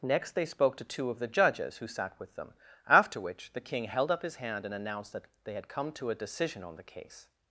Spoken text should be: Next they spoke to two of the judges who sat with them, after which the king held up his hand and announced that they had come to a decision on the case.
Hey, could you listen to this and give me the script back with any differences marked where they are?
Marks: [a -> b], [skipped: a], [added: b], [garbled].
Next they spoke to two of the judges who sat with them, after which the king held up his hand and announced that they had come to a decision on the case.